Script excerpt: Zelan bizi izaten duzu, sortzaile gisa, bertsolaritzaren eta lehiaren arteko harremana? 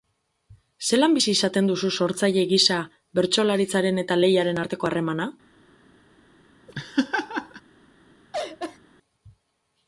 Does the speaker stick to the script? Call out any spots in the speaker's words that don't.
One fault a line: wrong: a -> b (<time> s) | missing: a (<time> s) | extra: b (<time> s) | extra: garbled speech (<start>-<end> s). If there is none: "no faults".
no faults